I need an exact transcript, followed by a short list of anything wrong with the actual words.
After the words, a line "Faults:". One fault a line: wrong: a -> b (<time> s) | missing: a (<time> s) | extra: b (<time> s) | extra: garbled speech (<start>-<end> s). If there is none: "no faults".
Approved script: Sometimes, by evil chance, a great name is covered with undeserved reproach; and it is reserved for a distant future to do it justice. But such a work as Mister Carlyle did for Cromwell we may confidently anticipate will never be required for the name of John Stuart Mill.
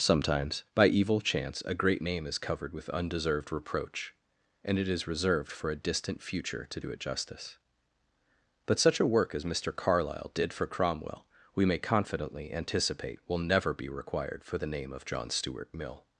Sometimes, by evil chance, a great name is covered with undeserved reproach; and it is reserved for a distant future to do it justice. But such a work as Mister Carlyle did for Cromwell we may confidently anticipate will never be required for the name of John Stuart Mill.
Faults:
no faults